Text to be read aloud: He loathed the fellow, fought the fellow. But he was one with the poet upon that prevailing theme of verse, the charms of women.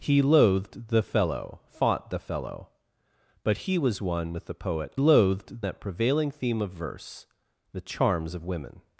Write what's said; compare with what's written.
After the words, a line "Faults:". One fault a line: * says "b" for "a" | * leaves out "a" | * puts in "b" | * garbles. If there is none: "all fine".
He loathed the fellow, fought the fellow. But he was one with the poet loathed that prevailing theme of verse, the charms of women.
Faults:
* says "loathed" for "upon"